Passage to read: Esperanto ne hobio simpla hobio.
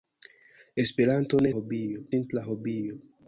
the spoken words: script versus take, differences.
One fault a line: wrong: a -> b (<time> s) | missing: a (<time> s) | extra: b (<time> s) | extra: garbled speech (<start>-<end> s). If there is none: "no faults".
no faults